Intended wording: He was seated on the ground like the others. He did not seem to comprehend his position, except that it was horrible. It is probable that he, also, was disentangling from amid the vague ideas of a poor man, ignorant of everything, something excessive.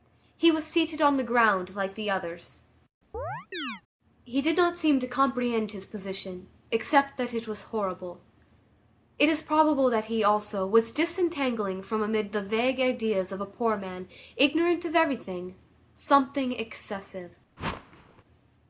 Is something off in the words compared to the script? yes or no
no